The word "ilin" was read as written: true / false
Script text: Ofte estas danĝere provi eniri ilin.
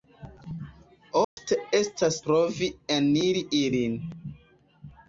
true